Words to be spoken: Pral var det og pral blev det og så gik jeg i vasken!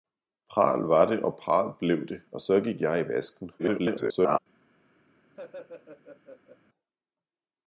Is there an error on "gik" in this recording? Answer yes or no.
no